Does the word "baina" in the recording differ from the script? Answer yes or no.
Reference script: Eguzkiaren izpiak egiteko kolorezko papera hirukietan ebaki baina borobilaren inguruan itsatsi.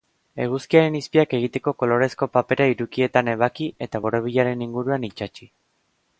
yes